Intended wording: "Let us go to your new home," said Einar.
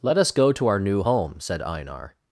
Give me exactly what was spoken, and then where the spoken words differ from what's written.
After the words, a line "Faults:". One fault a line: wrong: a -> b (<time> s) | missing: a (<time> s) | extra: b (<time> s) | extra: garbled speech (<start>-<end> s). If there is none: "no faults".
"Let us go to our new home," said Einar.
Faults:
wrong: your -> our (0.7 s)